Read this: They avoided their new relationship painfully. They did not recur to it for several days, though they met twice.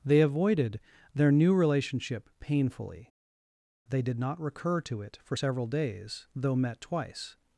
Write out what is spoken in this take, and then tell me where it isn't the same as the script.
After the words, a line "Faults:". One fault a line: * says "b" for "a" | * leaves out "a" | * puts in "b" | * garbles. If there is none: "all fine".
They avoided their new relationship painfully. They did not recur to it for several days, though met twice.
Faults:
* leaves out "they"